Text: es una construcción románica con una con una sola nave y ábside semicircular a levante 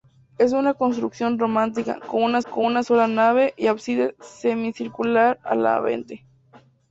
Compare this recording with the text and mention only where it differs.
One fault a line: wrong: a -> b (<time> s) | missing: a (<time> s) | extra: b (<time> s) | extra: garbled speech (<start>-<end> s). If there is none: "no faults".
no faults